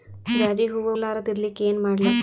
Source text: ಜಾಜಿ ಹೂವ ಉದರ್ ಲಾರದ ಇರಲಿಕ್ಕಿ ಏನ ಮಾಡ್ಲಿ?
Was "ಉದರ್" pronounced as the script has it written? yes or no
no